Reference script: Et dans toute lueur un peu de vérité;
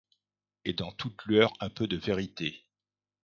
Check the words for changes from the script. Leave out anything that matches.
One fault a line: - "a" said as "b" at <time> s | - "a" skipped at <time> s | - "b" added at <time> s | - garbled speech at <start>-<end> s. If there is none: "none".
none